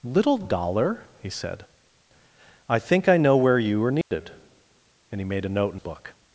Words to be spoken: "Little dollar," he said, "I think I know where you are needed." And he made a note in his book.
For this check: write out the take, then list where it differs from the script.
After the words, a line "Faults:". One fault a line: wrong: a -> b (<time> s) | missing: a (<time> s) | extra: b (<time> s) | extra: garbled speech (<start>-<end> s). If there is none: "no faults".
"Little dollar," he said, "I think I know where you are needed." And he made a note in book.
Faults:
missing: his (5.8 s)